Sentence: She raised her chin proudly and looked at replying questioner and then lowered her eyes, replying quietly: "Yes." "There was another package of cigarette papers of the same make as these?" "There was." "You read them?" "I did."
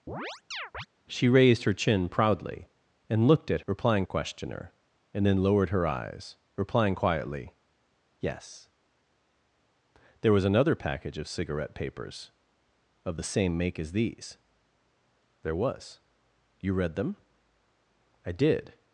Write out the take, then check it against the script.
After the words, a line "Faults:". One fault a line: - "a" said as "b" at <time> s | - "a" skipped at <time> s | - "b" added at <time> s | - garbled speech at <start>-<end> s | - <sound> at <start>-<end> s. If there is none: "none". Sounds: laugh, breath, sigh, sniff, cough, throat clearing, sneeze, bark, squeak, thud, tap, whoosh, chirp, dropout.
She raised her chin proudly and looked at replying questioner and then lowered her eyes, replying quietly: "Yes." "There was another package of cigarette papers of the same make as these?" "There was." "You read them?" "I did."
Faults:
- chirp at 0.1-0.9 s